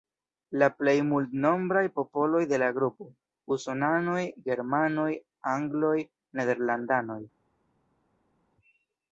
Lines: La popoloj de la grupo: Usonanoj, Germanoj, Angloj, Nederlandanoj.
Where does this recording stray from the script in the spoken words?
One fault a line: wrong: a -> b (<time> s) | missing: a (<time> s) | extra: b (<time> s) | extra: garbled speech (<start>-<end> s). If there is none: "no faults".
extra: plej multnombraj (0.8 s)